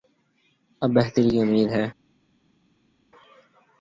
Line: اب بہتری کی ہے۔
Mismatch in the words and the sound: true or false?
true